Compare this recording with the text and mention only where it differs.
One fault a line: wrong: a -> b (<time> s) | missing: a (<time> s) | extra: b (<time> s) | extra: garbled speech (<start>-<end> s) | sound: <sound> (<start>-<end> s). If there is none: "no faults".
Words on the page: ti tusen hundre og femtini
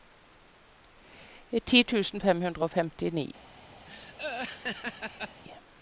extra: fem (2.2 s)
sound: laugh (3.9-5.4 s)